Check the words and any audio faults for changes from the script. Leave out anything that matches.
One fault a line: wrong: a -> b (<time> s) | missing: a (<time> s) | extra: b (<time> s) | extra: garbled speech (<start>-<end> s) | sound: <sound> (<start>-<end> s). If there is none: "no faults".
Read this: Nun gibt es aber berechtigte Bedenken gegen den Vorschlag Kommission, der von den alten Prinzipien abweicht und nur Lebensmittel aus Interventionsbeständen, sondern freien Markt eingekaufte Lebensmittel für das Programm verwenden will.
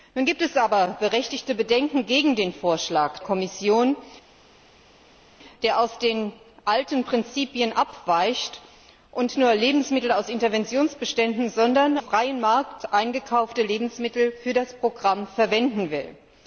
no faults